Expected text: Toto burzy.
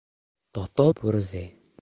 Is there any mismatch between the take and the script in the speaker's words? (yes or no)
no